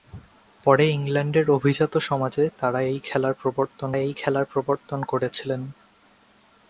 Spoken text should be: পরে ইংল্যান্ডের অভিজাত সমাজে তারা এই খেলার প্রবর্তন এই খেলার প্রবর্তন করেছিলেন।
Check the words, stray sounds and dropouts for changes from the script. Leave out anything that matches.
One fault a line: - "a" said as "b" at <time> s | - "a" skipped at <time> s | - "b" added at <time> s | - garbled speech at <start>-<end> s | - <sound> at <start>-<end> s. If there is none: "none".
none